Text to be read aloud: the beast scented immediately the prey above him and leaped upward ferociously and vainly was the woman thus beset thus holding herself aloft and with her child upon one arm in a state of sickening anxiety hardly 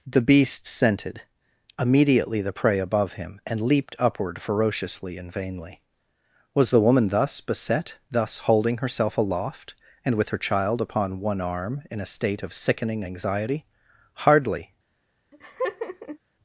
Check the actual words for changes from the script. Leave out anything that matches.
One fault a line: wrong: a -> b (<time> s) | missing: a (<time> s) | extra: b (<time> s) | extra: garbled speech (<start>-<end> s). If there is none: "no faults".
no faults